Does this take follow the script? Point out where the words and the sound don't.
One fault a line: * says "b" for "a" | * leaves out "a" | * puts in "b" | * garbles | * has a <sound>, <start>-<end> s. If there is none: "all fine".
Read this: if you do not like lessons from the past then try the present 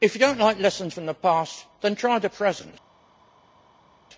all fine